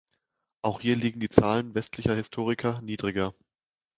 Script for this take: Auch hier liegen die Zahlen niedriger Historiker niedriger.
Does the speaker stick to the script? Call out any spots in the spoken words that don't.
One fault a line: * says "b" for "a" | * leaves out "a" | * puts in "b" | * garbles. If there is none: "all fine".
* says "westlicher" for "niedriger"